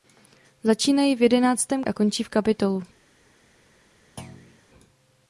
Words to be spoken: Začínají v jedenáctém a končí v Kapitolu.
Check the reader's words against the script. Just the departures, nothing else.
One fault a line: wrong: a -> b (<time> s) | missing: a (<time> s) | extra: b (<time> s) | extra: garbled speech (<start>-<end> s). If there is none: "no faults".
no faults